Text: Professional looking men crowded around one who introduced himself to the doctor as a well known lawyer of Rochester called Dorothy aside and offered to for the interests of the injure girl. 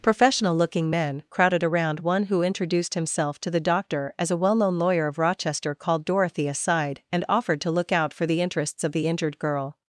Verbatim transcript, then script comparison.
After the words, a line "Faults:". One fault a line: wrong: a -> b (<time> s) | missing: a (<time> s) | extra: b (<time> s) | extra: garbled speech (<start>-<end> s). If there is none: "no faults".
Professional looking men crowded around one who introduced himself to the doctor as a well known lawyer of Rochester called Dorothy aside and offered to look out for the interests of the injured girl.
Faults:
extra: look out (7.7 s)
wrong: injure -> injured (9.1 s)